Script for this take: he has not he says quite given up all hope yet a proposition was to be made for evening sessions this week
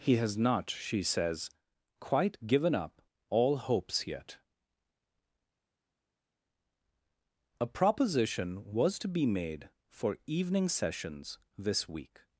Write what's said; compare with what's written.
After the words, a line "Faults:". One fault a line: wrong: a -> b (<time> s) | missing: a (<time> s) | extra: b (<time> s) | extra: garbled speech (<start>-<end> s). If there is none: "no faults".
he has not she says quite given up all hopes yet a proposition was to be made for evening sessions this week
Faults:
wrong: he -> she (0.7 s)
wrong: hope -> hopes (3.6 s)